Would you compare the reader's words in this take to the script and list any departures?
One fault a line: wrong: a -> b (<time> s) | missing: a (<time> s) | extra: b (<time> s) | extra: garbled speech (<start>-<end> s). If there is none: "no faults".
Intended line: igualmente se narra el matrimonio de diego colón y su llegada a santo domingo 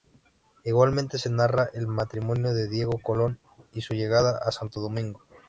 no faults